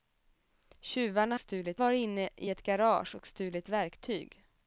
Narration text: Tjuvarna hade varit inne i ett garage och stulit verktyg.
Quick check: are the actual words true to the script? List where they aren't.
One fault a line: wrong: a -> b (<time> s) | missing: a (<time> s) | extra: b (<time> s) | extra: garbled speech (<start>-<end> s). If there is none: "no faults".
wrong: hade -> stulit (1.4 s)